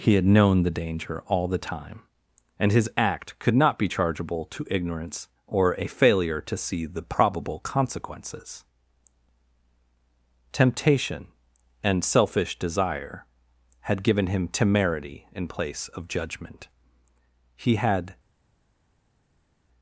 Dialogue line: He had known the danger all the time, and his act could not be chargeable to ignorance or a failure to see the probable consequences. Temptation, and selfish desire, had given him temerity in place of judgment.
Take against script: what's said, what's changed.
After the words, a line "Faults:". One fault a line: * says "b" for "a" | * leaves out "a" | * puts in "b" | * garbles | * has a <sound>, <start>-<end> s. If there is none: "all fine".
He had known the danger all the time, and his act could not be chargeable to ignorance or a failure to see the probable consequences. Temptation, and selfish desire, had given him temerity in place of judgment. He had
Faults:
* puts in "He had"